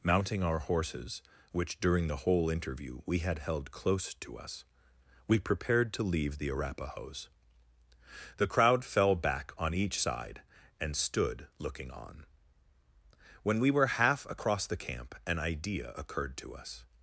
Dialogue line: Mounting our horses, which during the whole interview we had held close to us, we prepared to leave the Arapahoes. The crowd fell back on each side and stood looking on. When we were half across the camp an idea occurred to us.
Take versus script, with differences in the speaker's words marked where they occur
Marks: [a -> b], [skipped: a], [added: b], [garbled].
Mounting our horses, which during the whole interview we had held close to us, we prepared to leave the Arapahoes. The crowd fell back on each side and stood looking on. When we were half across the camp an idea occurred to us.